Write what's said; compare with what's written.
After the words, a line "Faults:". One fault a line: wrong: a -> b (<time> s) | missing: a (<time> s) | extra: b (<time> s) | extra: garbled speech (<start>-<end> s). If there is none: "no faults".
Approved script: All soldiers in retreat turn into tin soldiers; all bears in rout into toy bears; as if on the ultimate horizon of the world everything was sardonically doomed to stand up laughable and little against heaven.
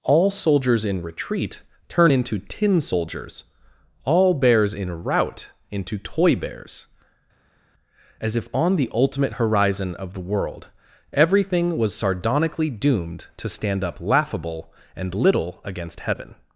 All soldiers in retreat turn into tin soldiers; all bears in rout into toy bears; as if on the ultimate horizon of the world everything was sardonically doomed to stand up laughable and little against heaven.
Faults:
no faults